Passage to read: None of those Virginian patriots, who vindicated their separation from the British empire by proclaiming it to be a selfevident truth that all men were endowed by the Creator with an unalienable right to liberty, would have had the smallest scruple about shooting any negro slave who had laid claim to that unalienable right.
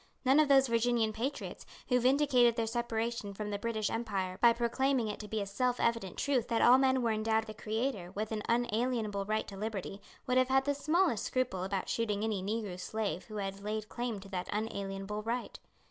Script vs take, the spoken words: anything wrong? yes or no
yes